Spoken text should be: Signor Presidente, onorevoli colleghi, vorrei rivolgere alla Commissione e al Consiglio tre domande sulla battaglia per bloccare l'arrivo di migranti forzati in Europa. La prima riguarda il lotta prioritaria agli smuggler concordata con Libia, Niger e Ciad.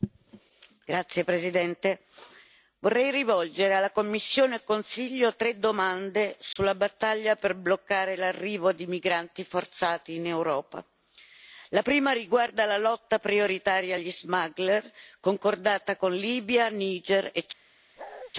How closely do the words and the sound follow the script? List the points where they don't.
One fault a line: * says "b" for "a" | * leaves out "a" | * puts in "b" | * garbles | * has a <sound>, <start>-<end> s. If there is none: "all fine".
* has a dropout, 6.5-6.6 s
* says "la" for "il"
* has a bark, 18.0-18.3 s